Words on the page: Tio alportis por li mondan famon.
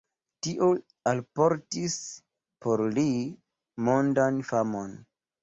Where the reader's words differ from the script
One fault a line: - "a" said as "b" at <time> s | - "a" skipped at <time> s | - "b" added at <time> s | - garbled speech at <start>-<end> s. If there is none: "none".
none